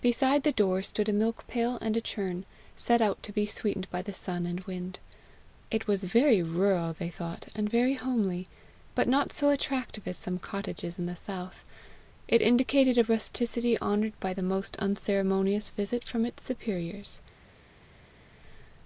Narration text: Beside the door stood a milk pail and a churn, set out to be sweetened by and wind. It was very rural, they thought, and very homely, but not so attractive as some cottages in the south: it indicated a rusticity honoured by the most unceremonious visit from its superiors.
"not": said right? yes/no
yes